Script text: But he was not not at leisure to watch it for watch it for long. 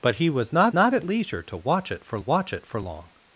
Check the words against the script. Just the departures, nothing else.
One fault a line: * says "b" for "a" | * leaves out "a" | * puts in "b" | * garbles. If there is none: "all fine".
all fine